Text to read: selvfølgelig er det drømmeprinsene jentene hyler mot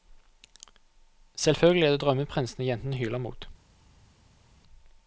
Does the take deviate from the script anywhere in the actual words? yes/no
no